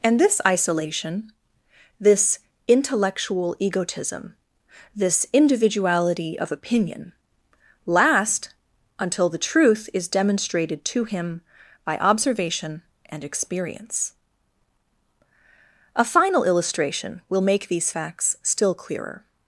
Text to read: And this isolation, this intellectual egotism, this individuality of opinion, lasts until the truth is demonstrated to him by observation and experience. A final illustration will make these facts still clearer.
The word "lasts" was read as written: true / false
false